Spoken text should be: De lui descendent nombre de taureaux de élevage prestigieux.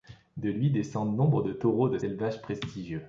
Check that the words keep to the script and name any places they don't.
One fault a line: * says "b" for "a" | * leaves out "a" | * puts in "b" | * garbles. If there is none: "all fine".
all fine